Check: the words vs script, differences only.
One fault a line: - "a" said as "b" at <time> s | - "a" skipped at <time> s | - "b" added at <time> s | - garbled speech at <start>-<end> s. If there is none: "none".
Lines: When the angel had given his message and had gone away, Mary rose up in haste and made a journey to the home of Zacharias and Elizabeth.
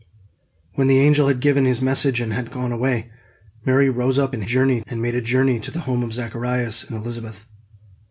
- "haste" said as "journey" at 4.4 s